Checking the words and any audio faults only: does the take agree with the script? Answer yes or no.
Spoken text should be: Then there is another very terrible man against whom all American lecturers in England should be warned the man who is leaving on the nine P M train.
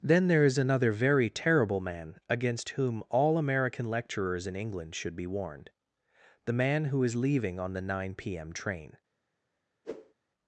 no